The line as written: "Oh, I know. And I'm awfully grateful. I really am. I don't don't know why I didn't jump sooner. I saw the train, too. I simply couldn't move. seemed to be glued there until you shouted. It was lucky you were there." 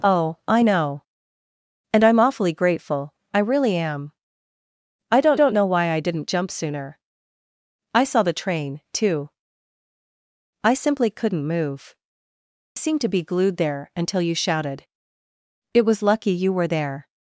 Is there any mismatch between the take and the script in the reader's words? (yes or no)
no